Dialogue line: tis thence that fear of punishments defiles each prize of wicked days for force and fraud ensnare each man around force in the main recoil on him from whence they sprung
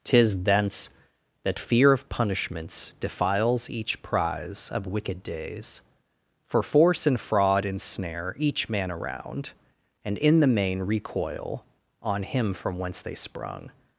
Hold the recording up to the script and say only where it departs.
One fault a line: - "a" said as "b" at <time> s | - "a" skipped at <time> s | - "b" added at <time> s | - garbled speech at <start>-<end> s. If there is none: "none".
- "force" said as "and" at 10.1 s